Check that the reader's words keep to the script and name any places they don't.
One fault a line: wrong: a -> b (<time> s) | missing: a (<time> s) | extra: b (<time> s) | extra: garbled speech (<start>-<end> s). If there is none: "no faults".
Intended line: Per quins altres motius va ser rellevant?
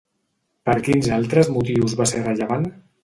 no faults